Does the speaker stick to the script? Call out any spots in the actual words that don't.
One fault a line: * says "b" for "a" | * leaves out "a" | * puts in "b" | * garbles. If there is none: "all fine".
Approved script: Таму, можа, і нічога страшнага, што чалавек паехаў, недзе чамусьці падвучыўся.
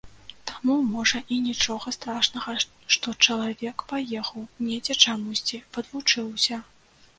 all fine